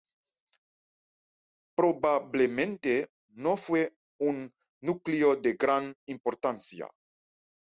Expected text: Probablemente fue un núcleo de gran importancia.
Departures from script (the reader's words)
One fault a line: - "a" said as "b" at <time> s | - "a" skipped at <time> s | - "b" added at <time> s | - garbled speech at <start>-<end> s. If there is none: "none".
- "no" added at 3.3 s